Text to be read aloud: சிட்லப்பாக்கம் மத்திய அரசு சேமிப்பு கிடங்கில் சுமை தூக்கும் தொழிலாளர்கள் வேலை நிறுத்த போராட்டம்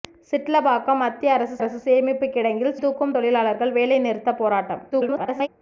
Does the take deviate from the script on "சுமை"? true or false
true